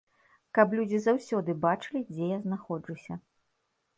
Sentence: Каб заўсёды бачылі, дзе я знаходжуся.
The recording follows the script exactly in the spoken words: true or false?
false